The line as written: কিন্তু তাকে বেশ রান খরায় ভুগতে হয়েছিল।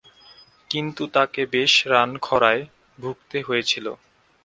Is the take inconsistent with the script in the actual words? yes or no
no